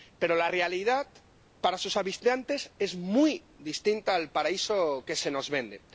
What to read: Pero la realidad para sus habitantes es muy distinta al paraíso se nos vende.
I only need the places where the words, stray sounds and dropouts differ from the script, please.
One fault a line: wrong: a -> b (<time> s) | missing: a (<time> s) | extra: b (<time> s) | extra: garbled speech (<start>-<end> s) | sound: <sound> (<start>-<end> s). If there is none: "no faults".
extra: que (5.0 s)